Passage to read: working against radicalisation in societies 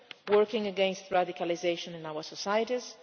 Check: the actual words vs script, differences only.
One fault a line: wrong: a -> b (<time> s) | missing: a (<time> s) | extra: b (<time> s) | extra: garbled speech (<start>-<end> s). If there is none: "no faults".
extra: our (2.0 s)